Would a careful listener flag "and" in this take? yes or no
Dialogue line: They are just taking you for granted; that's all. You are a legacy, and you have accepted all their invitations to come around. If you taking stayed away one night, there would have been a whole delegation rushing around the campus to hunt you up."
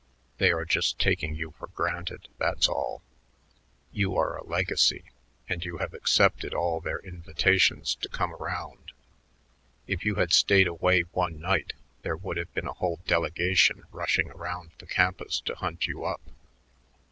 no